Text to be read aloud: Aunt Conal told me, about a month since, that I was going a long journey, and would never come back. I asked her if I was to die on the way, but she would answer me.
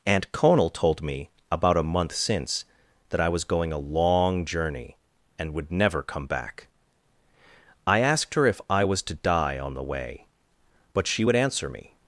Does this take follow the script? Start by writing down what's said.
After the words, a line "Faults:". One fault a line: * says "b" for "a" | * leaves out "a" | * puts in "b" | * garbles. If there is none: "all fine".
Aunt Conal told me, about a month since, that I was going a long journey, and would never come back. I asked her if I was to die on the way, but she would answer me.
Faults:
all fine